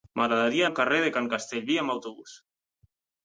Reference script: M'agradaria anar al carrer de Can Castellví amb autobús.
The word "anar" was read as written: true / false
false